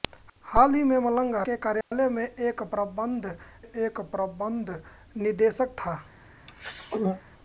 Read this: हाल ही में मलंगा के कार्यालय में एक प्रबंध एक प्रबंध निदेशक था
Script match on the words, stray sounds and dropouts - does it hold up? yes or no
no